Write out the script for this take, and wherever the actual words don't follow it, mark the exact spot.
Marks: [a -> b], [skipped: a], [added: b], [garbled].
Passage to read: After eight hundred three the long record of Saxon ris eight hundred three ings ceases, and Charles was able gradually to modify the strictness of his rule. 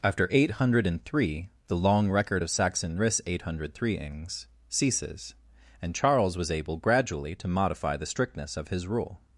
After eight hundred three the long record of Saxon ris eight hundred three ings ceases, and Charles was able gradually to modify the strictness of his rule.